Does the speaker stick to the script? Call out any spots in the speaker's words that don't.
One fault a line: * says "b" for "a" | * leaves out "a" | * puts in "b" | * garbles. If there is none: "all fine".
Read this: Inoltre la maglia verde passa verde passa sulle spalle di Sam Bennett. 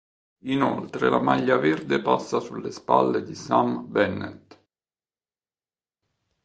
* leaves out "verde passa"